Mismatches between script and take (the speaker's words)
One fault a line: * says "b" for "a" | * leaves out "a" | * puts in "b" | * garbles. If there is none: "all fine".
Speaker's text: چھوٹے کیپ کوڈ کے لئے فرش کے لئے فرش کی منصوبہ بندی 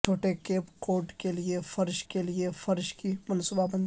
all fine